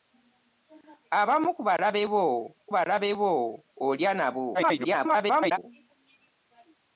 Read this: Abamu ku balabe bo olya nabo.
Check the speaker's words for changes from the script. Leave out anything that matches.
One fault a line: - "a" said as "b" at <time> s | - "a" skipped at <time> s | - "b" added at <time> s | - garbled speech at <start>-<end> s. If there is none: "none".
- "balabe bo" added at 2.7 s
- garbled speech at 4.5-5.6 s